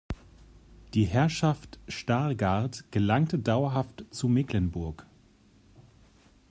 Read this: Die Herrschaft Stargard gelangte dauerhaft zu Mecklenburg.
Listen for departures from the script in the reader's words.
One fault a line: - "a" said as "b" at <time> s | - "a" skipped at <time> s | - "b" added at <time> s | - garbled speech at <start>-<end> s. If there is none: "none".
none